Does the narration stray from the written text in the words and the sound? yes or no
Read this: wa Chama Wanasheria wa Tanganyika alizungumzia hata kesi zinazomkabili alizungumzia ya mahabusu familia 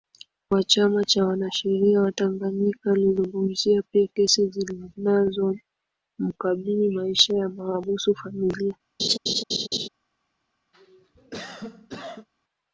yes